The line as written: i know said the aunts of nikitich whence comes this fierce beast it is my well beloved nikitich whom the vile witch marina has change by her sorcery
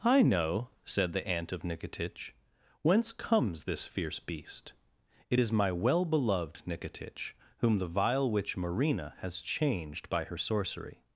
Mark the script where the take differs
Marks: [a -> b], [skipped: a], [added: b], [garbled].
i know said the [aunts -> aunt] of nikitich whence comes this fierce beast it is my well beloved nikitich whom the vile witch marina has [change -> changed] by her sorcery